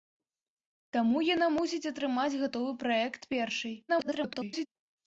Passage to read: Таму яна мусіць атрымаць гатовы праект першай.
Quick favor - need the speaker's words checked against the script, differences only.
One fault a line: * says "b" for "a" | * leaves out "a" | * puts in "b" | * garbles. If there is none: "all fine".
* garbles